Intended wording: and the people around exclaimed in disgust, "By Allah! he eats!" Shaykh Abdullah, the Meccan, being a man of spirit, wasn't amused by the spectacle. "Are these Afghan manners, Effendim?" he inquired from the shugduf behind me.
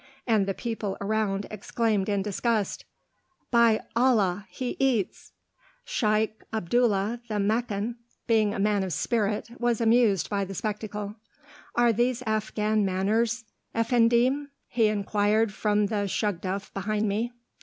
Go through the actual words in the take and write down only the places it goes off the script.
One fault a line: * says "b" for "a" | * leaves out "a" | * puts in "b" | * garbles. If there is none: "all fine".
* says "was" for "wasn't"